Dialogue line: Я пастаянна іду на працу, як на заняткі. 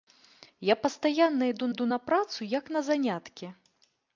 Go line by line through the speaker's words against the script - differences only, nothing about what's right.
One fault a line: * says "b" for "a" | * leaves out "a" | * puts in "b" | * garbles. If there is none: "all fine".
* puts in "іду"